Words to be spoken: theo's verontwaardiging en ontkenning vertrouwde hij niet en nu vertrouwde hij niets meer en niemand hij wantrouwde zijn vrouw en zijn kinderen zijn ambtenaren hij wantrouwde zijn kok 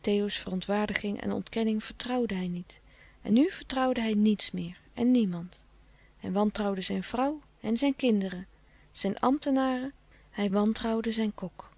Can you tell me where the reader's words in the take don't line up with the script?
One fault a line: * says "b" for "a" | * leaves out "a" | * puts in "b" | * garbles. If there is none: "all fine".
all fine